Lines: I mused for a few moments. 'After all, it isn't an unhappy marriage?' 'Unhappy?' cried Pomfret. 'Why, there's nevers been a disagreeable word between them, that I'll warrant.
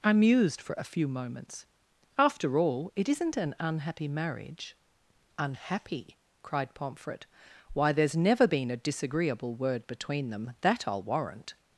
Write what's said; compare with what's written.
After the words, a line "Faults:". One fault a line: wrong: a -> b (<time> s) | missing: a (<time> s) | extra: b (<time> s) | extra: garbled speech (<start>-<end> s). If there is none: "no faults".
I mused for a few moments. 'After all, it isn't an unhappy marriage?' 'Unhappy?' cried Pomfret. 'Why, there's never been a disagreeable word between them, that I'll warrant.
Faults:
wrong: nevers -> never (8.2 s)